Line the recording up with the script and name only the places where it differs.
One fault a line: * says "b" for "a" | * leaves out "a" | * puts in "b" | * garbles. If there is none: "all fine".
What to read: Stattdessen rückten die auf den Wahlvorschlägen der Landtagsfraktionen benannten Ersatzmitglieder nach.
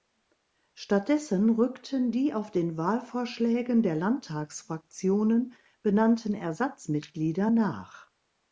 all fine